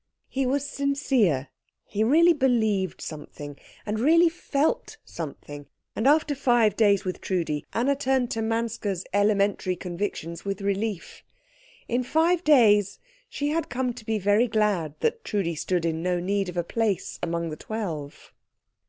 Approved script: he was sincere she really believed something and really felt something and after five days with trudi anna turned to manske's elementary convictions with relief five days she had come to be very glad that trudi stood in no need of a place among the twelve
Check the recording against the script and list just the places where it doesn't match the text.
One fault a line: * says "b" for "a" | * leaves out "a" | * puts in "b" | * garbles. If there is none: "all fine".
* says "he" for "she"
* puts in "in"